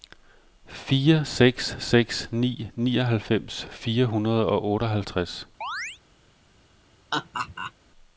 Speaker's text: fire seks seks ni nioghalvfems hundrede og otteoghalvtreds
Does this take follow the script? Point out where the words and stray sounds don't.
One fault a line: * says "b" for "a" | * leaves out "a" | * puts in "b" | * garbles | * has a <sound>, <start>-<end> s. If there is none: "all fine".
* puts in "fire"
* has a chirp, 5.6-6.0 s
* has a laugh, 7.1-7.7 s